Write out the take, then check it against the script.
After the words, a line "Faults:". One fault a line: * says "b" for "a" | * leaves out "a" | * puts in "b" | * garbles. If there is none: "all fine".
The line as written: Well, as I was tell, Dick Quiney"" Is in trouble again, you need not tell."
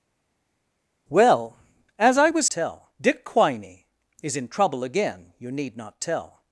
Well, as I was tell, Dick Quiney"" Is in trouble again, you need not tell."
Faults:
all fine